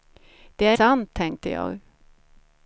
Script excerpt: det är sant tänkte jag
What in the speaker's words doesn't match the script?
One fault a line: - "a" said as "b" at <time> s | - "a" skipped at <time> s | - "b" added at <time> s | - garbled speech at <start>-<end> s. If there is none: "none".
none